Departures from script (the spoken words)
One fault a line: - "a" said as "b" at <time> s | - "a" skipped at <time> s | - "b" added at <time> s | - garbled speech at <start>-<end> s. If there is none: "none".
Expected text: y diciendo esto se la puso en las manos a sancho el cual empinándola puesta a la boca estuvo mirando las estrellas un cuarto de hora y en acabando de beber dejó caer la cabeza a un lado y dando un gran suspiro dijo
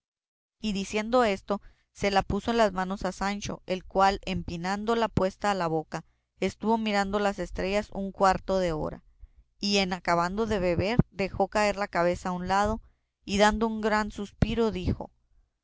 none